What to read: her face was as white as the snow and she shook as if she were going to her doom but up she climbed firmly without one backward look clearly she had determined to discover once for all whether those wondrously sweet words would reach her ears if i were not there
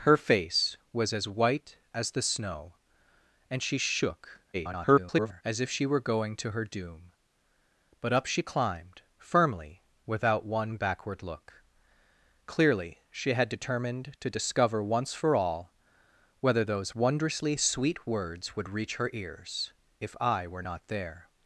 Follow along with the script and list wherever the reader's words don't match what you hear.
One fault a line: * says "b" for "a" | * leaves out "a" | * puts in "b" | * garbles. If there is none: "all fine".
* garbles